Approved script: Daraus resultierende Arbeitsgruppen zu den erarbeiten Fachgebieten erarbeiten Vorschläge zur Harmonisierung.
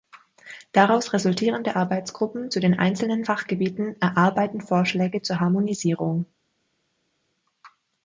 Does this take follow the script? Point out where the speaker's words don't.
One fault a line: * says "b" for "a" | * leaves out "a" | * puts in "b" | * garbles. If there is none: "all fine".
* says "einzelnen" for "erarbeiten"